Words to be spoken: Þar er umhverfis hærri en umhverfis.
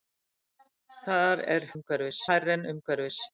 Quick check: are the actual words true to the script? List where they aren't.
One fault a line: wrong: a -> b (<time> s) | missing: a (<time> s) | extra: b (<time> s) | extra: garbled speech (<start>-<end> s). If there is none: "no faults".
no faults